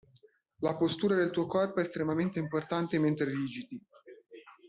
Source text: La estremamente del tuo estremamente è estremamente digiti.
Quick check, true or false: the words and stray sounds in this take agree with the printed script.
false